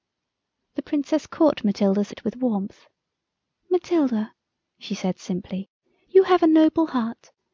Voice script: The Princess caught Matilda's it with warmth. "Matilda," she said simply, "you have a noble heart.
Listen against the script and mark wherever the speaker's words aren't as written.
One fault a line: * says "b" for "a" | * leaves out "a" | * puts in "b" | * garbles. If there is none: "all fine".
all fine